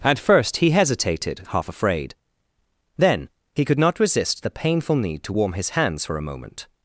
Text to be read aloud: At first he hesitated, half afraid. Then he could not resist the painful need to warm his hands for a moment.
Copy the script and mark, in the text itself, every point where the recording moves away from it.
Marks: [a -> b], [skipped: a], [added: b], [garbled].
At first he hesitated, half afraid. Then he could not resist the painful need to warm his hands for a moment.